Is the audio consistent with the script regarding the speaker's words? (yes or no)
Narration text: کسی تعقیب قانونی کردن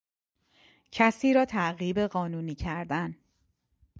no